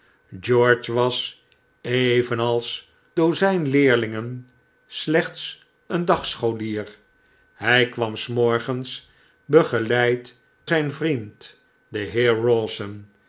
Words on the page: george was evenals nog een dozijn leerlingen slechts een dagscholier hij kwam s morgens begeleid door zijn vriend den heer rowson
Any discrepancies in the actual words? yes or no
yes